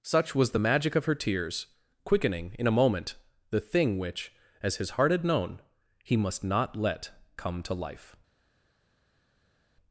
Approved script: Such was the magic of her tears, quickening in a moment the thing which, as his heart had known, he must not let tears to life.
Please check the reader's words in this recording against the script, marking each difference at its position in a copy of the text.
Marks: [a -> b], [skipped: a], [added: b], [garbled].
Such was the magic of her tears, quickening in a moment the thing which, as his heart had known, he must not let [tears -> come] to life.